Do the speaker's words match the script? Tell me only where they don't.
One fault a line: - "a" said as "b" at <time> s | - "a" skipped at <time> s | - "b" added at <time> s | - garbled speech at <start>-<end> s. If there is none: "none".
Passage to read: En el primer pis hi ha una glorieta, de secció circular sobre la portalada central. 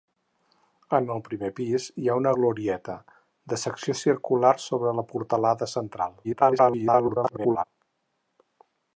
- garbled speech at 6.2-7.6 s